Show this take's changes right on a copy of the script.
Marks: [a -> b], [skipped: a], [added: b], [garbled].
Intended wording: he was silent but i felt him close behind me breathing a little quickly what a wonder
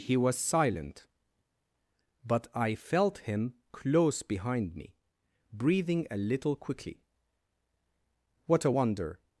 he was silent but i felt him close behind me breathing a little quickly what a wonder